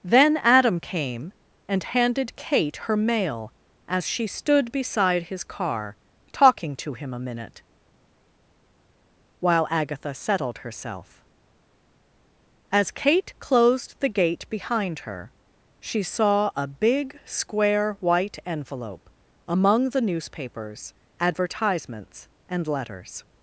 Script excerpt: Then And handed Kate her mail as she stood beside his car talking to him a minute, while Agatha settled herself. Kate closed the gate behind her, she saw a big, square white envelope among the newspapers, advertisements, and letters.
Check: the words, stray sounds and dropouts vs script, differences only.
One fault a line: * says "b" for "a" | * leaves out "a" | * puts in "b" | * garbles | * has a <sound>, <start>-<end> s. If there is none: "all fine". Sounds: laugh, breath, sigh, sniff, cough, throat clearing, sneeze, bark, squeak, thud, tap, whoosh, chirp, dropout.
* puts in "Adam came"
* puts in "As"